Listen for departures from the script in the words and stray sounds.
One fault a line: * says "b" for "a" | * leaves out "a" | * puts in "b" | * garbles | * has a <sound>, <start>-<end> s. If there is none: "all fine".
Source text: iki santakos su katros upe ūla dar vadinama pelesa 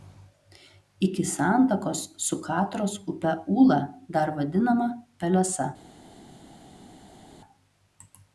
all fine